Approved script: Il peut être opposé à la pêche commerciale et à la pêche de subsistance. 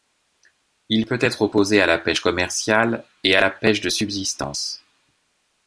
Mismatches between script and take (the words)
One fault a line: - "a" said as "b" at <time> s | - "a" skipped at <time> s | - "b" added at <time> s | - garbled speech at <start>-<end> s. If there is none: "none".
none